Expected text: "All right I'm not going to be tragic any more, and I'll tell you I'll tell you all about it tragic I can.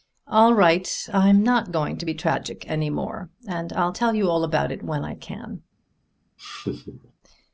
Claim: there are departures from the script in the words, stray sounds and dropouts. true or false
true